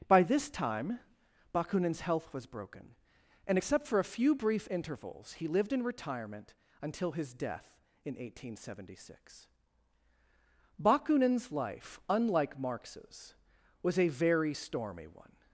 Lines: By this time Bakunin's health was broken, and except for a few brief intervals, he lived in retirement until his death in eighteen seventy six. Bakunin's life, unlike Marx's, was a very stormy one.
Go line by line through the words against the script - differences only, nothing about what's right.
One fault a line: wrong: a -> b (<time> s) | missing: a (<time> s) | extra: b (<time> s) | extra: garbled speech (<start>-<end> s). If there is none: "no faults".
no faults